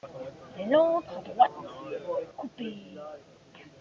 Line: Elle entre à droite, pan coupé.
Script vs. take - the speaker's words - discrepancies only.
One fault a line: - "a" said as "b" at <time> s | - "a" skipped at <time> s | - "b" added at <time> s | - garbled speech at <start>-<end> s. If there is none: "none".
- "pan" skipped at 1.5 s